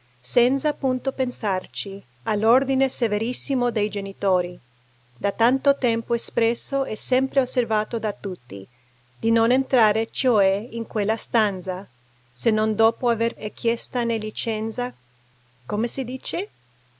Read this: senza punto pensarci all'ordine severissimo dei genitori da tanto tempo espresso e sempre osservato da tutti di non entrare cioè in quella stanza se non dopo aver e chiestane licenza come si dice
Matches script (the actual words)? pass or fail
pass